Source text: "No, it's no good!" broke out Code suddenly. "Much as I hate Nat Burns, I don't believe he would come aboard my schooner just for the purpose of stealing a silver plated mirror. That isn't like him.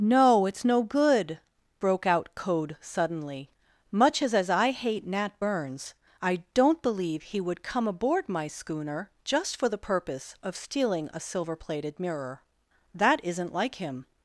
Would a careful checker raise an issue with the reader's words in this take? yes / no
yes